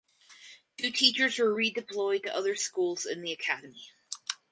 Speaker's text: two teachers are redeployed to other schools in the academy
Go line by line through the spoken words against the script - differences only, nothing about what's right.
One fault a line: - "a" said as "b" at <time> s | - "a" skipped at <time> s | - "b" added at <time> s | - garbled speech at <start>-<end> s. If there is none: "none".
- "are" said as "were" at 1.4 s